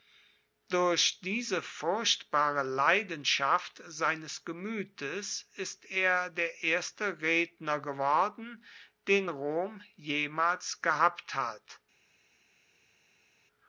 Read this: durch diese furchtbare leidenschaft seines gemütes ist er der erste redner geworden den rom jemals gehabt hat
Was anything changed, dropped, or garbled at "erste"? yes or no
no